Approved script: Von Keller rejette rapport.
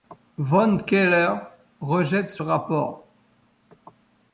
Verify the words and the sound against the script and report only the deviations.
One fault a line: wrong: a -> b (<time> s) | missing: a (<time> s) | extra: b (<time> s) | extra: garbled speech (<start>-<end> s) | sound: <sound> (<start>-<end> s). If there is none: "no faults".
extra: ce (2.3 s)